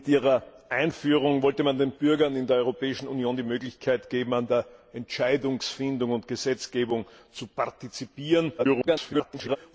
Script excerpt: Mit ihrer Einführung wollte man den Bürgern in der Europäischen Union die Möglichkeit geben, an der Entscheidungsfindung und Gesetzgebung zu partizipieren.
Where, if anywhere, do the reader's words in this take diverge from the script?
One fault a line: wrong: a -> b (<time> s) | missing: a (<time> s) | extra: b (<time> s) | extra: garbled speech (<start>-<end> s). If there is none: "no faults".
extra: garbled speech (8.6-9.6 s)